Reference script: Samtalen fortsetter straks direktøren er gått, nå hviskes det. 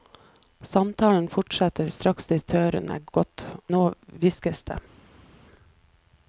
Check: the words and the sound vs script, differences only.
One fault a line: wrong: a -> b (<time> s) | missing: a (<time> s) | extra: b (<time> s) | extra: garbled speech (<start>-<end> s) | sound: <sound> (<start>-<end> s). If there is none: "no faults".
no faults